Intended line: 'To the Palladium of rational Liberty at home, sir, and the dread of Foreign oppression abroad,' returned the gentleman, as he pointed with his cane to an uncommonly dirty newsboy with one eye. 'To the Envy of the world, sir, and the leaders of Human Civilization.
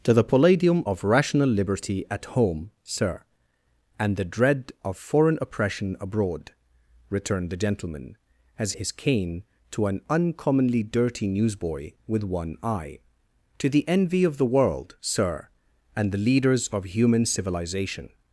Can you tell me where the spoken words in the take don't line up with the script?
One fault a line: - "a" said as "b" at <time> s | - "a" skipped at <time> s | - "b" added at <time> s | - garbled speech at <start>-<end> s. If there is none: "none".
- "he pointed with" skipped at 8.7 s